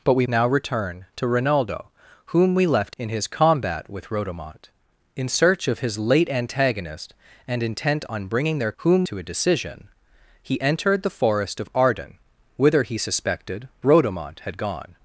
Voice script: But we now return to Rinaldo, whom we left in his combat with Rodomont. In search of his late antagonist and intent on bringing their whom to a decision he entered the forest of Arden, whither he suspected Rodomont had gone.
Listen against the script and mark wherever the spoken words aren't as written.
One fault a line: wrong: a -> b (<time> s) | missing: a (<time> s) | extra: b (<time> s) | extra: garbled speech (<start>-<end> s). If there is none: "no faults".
no faults